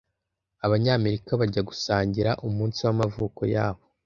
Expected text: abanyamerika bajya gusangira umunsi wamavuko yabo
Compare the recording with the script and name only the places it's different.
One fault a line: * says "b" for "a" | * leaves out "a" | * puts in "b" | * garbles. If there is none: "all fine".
all fine